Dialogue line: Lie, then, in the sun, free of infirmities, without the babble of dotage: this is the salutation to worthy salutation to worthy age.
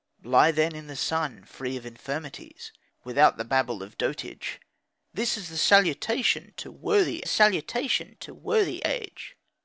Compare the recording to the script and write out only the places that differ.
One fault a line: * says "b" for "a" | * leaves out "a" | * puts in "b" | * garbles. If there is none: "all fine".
all fine